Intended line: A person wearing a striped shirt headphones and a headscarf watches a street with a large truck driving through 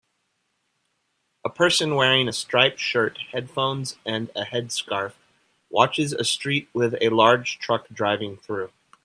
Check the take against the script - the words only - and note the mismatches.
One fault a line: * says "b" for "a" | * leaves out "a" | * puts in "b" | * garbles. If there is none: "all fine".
all fine